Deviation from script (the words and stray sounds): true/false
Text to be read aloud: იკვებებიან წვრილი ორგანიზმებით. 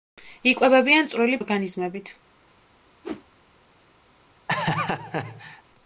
true